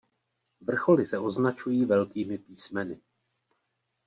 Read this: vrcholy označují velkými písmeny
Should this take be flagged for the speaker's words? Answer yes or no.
yes